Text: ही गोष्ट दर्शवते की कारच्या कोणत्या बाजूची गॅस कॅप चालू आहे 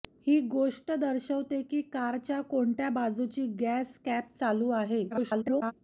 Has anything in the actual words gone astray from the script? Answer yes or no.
yes